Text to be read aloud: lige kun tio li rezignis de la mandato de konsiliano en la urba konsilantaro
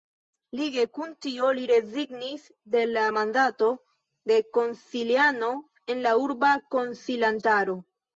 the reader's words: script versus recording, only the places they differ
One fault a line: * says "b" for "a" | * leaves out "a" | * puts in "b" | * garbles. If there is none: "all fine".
all fine